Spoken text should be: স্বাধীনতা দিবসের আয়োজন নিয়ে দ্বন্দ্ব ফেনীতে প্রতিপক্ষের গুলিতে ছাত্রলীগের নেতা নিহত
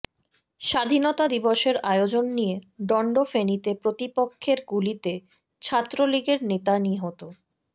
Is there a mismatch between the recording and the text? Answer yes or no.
no